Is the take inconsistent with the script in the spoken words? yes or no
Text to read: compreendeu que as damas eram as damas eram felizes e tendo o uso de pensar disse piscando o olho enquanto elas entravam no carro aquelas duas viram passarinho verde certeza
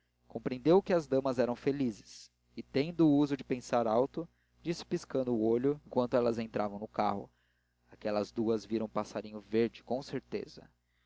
yes